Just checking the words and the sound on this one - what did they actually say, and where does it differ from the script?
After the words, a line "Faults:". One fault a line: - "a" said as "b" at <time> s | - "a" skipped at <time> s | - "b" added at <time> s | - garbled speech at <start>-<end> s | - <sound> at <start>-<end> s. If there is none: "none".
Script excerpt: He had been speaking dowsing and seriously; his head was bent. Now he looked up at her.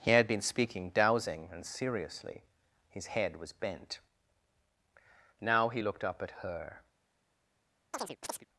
He had been speaking dowsing and seriously; his head was bent. Now he looked up at her.
Faults:
- chirp at 7.9-8.5 s